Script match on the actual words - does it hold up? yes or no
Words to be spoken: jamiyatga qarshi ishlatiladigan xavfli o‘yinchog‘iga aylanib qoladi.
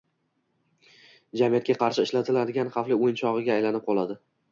yes